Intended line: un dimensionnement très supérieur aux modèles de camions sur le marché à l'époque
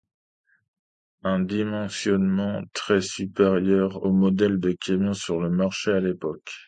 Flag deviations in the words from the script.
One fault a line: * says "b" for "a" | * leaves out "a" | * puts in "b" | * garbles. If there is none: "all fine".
all fine